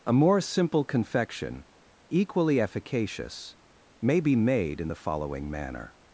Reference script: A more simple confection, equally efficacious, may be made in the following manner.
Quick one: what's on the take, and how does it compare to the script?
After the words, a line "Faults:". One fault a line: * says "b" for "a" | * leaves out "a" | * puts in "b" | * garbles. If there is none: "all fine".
A more simple confection, equally efficacious, may be made in the following manner.
Faults:
all fine